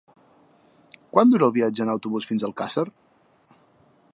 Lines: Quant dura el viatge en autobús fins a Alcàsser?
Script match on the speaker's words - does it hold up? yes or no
yes